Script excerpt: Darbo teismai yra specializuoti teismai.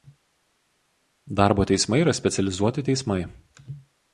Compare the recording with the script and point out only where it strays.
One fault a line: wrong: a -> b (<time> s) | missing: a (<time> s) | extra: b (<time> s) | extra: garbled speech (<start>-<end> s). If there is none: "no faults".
no faults